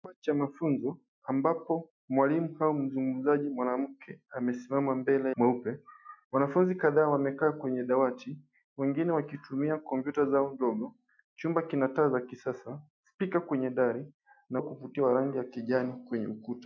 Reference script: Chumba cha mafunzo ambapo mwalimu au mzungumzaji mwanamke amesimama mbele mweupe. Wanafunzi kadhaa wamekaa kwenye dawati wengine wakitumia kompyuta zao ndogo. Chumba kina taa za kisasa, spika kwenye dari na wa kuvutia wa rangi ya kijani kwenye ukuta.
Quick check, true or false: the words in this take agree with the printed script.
true